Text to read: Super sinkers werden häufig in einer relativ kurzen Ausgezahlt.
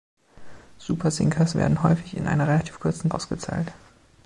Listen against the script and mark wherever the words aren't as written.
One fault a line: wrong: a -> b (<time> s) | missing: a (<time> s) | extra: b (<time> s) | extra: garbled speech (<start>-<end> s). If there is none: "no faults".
no faults